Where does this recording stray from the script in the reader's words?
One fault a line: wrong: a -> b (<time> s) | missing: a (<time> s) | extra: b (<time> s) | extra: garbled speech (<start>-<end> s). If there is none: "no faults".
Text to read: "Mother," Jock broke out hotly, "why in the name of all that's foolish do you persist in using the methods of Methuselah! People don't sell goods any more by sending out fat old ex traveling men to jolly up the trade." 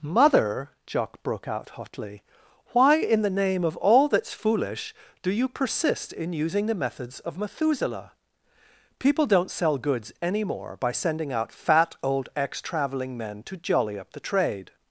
no faults